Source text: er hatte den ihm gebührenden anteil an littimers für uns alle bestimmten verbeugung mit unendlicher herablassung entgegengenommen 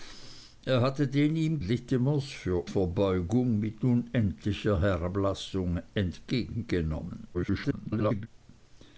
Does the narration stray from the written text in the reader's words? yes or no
yes